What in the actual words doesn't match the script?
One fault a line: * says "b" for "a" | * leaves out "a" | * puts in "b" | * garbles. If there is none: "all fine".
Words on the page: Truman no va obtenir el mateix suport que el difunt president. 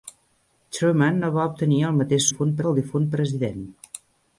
* says "difunt" for "suport"